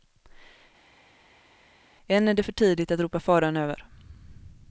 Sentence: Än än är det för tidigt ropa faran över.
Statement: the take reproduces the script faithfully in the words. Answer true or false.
false